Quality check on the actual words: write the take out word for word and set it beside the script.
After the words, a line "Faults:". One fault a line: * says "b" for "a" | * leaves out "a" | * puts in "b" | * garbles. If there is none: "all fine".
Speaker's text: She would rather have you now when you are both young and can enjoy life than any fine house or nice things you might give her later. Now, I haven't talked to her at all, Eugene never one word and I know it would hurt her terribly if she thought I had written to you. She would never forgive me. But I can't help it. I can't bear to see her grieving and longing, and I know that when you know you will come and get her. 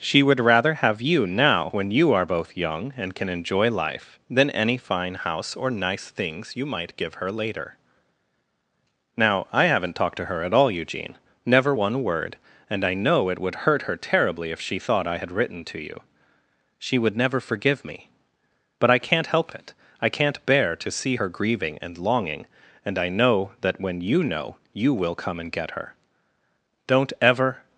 She would rather have you now when you are both young and can enjoy life than any fine house or nice things you might give her later. Now, I haven't talked to her at all, Eugene never one word and I know it would hurt her terribly if she thought I had written to you. She would never forgive me. But I can't help it. I can't bear to see her grieving and longing, and I know that when you know you will come and get her. Don't ever
Faults:
* puts in "Don't ever"